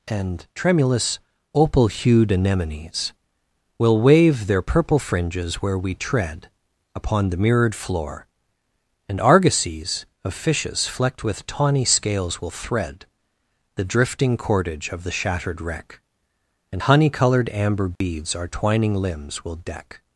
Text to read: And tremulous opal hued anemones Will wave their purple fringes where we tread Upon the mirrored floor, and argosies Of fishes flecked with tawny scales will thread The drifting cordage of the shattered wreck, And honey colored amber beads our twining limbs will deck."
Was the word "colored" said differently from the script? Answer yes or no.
no